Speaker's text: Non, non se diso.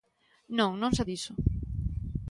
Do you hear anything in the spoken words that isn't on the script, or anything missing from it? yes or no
no